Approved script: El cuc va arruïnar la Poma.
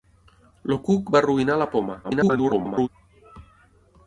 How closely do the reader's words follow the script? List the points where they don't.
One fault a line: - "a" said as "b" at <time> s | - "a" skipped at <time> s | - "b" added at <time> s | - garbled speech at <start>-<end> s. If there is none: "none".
- garbled speech at 2.0-2.9 s